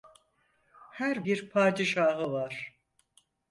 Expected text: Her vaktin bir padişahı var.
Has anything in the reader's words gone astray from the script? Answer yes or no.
yes